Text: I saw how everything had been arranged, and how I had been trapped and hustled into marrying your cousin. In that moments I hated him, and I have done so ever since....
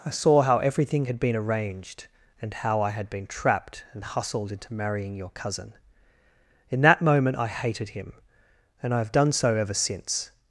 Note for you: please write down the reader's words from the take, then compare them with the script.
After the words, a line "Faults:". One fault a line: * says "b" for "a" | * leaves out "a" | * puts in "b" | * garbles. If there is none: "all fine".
I saw how everything had been arranged, and how I had been trapped and hustled into marrying your cousin. In that moment I hated him, and I have done so ever since....
Faults:
* says "moment" for "moments"